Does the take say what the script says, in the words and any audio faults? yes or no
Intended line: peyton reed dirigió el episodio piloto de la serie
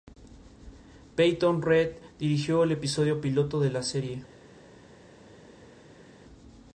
yes